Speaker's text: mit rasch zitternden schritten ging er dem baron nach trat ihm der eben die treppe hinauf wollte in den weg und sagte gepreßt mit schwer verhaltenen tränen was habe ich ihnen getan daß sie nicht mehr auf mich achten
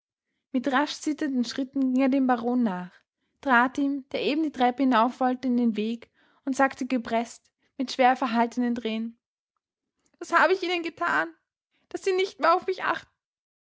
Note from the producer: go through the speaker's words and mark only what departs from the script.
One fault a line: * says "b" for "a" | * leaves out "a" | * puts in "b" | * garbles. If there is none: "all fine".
all fine